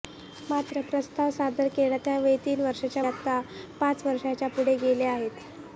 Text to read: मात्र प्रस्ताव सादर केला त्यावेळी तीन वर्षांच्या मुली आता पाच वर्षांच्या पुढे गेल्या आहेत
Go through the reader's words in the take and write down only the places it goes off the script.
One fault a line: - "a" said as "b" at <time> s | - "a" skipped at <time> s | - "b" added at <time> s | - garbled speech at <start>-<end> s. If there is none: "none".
- "मुली" skipped at 3.0 s